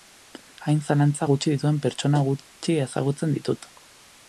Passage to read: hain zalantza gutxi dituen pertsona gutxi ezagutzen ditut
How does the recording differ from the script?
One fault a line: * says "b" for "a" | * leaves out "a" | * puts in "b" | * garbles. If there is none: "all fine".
all fine